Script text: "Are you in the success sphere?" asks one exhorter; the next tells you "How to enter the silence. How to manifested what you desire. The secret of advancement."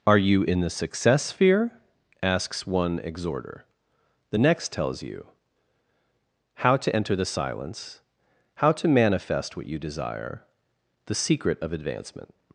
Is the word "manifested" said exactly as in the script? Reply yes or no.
no